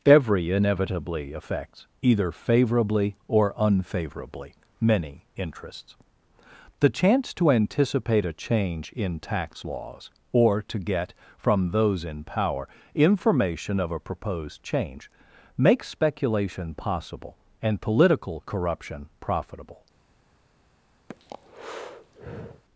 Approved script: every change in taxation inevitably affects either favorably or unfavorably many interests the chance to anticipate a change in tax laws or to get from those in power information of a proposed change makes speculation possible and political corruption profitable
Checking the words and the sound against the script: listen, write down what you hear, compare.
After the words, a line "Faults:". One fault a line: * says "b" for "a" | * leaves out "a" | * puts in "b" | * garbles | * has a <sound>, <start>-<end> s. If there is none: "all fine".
every inevitably affects either favorably or unfavorably many interests the chance to anticipate a change in tax laws or to get from those in power information of a proposed change makes speculation possible and political corruption profitable
Faults:
* leaves out "change in taxation"
* has a breath, 21.1-22.6 s